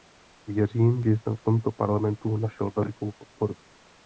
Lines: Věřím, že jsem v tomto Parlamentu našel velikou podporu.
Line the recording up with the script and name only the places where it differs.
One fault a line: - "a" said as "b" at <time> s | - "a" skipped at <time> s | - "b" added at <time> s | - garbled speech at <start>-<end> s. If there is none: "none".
none